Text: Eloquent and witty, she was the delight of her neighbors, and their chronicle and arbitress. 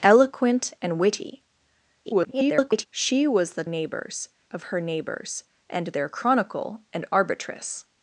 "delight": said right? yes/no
no